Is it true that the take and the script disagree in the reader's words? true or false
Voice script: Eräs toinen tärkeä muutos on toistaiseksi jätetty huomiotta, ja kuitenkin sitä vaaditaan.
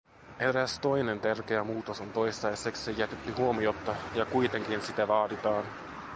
false